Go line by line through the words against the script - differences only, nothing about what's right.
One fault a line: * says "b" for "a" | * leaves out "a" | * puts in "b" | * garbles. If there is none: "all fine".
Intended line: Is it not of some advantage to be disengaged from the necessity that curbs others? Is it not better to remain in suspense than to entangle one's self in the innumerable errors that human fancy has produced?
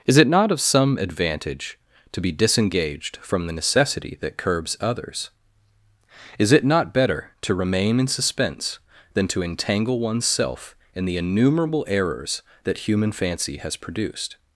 all fine